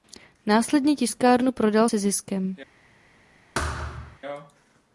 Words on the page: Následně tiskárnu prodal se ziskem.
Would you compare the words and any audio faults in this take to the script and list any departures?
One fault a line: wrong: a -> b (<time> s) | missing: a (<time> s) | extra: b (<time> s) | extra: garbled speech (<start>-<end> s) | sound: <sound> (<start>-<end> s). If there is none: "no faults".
sound: thud (3.5-4.2 s)